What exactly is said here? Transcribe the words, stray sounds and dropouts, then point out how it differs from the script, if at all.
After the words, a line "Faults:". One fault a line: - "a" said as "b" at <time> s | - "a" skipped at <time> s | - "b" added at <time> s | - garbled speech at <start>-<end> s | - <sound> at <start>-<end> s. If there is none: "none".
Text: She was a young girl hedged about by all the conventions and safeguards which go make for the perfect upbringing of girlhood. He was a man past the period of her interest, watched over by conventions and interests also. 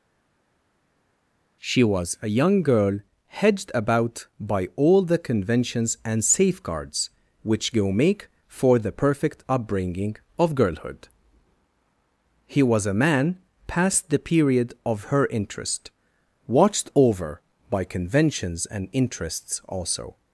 She was a young girl hedged about by all the conventions and safeguards which go make for the perfect upbringing of girlhood. He was a man past the period of her interest, watched over by conventions and interests also.
Faults:
none